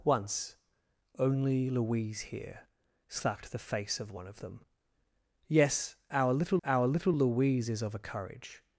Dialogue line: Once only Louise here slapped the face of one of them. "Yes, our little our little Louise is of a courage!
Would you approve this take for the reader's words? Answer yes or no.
yes